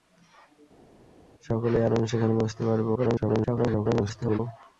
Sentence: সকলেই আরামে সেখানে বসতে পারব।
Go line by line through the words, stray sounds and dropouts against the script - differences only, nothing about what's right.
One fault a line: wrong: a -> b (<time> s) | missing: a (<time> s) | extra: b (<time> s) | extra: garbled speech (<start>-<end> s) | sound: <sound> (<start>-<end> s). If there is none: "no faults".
extra: garbled speech (2.9-4.4 s)